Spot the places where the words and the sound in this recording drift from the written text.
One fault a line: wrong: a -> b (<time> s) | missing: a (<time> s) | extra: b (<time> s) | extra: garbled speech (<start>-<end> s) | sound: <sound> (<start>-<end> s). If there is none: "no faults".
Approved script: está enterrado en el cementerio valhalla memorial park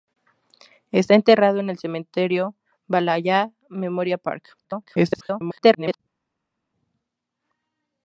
extra: garbled speech (4.6-6.0 s)